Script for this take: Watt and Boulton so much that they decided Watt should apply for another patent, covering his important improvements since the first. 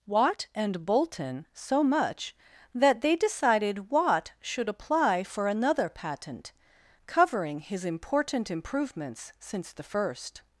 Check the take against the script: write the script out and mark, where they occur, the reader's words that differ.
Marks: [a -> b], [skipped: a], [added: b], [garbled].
Watt and Boulton so much that they decided Watt should apply for another patent, covering his important improvements since the first.